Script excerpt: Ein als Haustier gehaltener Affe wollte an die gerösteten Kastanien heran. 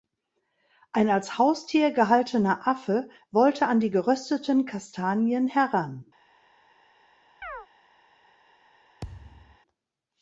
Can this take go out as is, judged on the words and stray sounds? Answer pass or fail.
fail